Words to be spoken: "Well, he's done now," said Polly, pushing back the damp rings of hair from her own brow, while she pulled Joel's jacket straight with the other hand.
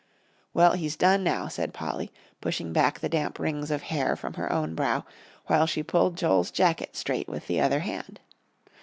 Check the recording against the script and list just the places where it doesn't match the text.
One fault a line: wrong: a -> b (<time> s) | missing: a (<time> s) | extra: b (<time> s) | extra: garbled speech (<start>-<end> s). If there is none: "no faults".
no faults